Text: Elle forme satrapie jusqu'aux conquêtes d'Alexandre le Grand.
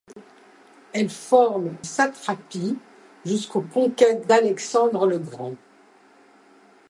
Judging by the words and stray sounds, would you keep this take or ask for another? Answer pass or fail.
pass